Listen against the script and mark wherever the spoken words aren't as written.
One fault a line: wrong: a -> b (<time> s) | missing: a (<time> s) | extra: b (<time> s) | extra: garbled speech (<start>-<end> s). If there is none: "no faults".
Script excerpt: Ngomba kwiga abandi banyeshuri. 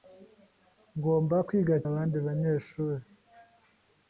no faults